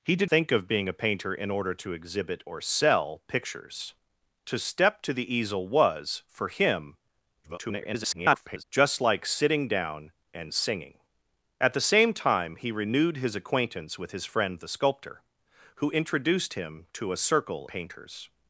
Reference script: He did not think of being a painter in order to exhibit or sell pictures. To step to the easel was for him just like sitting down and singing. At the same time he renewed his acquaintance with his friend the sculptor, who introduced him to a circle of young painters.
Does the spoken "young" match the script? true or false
false